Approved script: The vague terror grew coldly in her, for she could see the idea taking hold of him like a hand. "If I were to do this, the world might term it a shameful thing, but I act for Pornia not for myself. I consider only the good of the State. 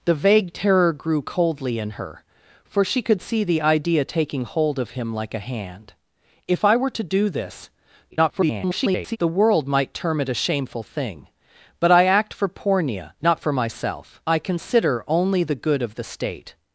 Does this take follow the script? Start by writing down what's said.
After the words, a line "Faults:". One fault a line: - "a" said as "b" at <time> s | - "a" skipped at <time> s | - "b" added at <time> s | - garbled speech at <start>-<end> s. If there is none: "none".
The vague terror grew coldly in her, for she could see the idea taking hold of him like a hand. "If I were to do this, [garbled] the world might term it a shameful thing, but I act for Pornia not for myself. I consider only the good of the State.
Faults:
- garbled speech at 8.1-9.2 s